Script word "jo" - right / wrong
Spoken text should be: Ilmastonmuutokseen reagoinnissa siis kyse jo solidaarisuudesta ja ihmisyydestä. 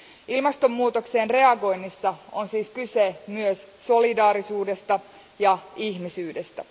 wrong